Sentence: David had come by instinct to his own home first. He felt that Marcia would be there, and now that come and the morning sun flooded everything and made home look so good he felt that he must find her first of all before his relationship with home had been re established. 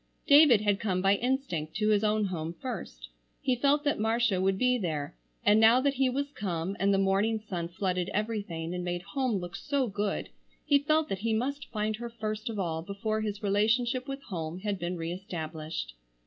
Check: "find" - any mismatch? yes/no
no